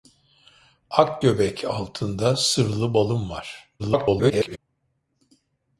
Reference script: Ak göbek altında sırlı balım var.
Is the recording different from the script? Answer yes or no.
yes